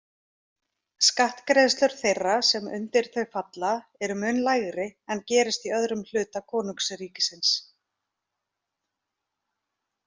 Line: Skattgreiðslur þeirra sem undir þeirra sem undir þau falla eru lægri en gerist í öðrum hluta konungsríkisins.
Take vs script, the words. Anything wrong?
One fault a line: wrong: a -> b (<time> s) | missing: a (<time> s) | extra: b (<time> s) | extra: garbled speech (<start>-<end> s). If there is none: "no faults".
missing: þeirra sem undir (3.1 s)
extra: mun (4.2 s)